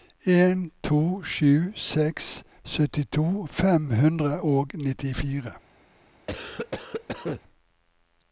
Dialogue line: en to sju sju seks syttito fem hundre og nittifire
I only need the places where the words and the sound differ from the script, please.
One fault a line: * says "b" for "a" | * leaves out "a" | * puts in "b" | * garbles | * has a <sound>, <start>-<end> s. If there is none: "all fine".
* leaves out "sju"
* has a cough, 6.3-7.4 s